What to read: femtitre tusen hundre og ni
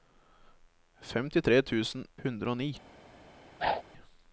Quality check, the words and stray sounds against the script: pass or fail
fail